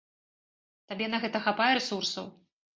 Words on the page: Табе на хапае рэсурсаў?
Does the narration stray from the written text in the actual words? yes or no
yes